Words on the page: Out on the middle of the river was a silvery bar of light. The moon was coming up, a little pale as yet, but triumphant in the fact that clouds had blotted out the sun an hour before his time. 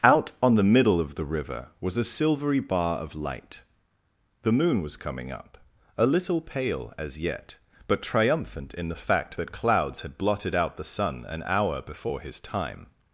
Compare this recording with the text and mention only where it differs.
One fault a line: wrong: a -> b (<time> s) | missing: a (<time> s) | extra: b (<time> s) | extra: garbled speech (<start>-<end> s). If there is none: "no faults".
no faults